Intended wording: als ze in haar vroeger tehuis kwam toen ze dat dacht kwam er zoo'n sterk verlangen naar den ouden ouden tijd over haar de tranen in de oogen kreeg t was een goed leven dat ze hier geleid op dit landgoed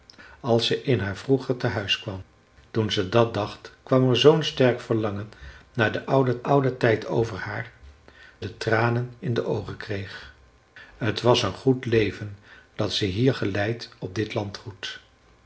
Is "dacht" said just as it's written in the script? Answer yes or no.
yes